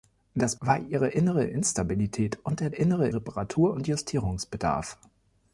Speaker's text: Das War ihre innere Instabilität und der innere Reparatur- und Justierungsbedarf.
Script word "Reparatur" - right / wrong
right